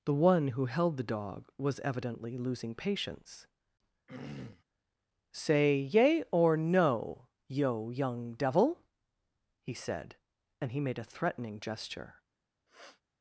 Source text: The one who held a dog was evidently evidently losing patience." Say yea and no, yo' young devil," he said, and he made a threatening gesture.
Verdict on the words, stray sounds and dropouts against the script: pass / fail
fail